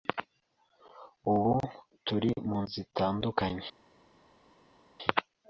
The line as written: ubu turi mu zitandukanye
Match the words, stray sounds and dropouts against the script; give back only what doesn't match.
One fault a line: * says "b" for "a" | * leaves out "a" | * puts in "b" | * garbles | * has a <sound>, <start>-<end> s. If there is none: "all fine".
all fine